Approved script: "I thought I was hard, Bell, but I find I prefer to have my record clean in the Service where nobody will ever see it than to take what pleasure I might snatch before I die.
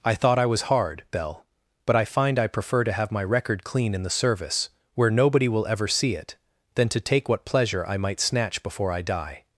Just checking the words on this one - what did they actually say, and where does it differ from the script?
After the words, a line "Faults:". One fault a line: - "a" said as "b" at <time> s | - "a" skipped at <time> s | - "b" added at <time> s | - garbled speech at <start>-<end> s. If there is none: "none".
"I thought I was hard, Bell, but I find I prefer to have my record clean in the Service where nobody will ever see it than to take what pleasure I might snatch before I die.
Faults:
none